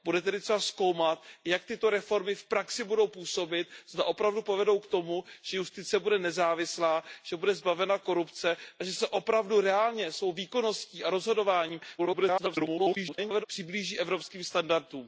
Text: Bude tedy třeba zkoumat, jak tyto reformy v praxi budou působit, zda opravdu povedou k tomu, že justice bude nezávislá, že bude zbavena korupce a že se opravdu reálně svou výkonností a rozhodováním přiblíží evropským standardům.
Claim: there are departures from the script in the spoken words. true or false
true